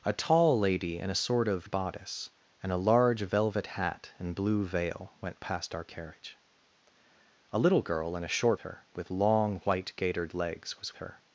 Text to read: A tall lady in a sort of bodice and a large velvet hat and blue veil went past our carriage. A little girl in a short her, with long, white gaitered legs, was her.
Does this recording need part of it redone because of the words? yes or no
no